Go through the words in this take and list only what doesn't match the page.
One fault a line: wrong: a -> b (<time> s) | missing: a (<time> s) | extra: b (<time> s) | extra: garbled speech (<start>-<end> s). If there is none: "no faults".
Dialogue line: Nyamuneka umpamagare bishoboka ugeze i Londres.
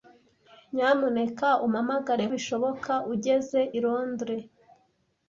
no faults